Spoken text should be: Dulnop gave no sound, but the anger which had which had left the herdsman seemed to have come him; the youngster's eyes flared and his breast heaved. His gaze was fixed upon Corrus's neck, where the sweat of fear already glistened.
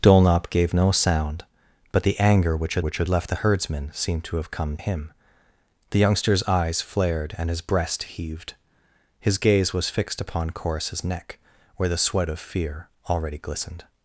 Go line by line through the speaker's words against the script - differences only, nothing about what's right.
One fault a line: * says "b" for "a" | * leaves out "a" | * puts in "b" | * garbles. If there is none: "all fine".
all fine